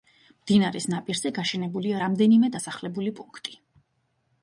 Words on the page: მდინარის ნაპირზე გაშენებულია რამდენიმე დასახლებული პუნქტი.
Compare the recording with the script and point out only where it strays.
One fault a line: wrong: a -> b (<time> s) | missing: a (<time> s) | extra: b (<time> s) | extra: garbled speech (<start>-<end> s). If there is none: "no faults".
no faults